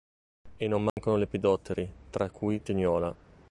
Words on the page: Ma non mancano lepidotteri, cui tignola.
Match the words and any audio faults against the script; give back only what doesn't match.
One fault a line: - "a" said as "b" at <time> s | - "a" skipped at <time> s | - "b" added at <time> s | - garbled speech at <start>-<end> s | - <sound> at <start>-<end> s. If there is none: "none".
- "Ma" said as "E" at 0.6 s
- dropout at 0.9-1.0 s
- "tra" added at 2.1 s